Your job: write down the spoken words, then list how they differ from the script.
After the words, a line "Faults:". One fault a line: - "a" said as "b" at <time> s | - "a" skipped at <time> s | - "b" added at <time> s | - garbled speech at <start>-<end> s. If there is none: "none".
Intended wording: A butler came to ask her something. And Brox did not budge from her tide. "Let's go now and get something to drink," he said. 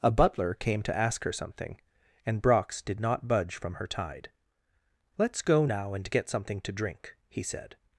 A butler came to ask her something. And Brox did not budge from her tide. "Let's go now and get something to drink," he said.
Faults:
none